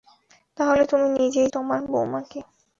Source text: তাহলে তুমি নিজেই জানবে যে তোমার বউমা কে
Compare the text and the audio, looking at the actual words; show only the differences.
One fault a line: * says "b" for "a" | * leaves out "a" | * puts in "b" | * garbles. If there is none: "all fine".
* leaves out "জানবে যে"